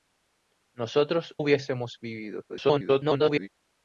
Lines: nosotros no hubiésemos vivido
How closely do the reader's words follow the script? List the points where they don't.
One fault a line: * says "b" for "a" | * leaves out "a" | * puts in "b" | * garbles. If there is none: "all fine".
* leaves out "no"
* garbles